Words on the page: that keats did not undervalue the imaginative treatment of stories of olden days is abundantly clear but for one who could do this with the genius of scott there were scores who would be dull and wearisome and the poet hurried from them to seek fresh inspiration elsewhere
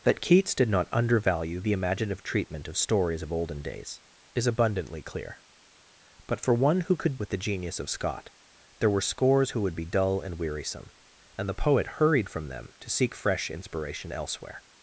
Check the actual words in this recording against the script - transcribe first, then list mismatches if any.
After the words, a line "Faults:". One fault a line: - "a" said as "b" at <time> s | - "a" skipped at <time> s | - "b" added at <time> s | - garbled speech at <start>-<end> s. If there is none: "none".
that keats did not undervalue the imaginative treatment of stories of olden days is abundantly clear but for one who could with the genius of scott there were scores who would be dull and wearisome and the poet hurried from them to seek fresh inspiration elsewhere
Faults:
- "do this" skipped at 7.2 s